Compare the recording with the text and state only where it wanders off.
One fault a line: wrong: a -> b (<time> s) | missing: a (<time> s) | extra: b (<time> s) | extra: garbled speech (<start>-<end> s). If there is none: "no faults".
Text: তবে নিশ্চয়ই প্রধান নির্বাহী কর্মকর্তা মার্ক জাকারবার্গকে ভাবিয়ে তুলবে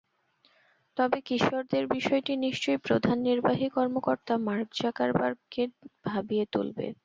extra: কিশোরদের বিষয়টি (1.3 s)